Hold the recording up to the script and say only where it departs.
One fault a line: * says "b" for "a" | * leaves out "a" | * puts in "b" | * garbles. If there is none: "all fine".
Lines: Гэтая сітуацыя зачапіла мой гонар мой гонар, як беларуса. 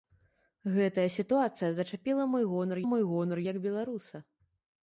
all fine